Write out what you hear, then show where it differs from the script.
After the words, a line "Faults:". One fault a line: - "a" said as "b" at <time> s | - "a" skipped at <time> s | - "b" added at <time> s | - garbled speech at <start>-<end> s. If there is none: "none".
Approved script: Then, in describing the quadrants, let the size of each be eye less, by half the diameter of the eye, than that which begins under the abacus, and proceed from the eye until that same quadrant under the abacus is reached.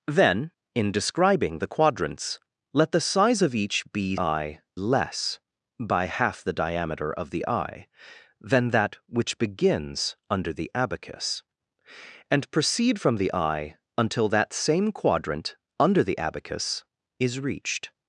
Then, in describing the quadrants, let the size of each be eye less, by half the diameter of the eye, than that which begins under the abacus, and proceed from the eye until that same quadrant under the abacus is reached.
Faults:
none